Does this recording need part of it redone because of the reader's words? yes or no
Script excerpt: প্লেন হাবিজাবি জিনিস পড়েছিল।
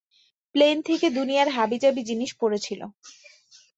yes